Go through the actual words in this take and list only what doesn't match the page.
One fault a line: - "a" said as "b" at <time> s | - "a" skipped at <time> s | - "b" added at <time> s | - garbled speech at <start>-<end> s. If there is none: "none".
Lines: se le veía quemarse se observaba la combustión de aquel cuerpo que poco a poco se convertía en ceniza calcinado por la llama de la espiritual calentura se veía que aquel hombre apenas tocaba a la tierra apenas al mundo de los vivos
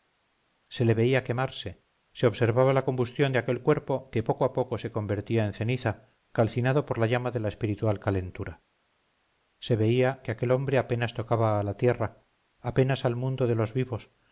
none